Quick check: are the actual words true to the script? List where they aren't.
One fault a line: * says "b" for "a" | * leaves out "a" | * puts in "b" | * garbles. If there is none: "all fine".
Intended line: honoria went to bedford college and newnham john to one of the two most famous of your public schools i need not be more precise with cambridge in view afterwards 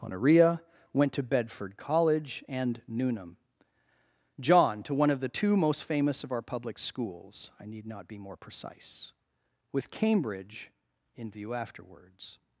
* says "our" for "your"